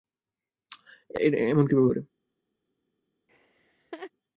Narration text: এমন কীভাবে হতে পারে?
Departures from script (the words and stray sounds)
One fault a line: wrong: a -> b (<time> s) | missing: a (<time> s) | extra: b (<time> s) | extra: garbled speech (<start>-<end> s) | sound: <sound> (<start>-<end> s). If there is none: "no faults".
missing: হতে (1.9 s)
sound: laugh (3.3-4.1 s)